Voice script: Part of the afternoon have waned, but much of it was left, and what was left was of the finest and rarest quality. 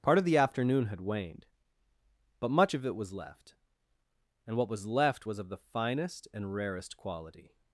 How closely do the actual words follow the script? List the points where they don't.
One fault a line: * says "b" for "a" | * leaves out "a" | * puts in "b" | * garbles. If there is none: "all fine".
* says "had" for "have"